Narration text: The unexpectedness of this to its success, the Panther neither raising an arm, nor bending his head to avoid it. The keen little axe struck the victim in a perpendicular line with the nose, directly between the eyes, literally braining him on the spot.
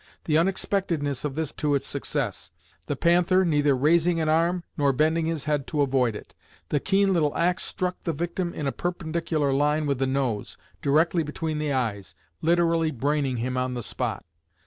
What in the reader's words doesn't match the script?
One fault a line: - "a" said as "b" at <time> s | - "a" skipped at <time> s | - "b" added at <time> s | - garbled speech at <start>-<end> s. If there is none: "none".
none